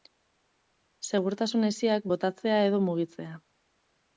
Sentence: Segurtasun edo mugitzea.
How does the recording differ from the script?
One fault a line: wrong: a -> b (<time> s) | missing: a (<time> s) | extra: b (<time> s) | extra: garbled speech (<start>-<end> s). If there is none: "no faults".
extra: hesiak botatzea (1.7 s)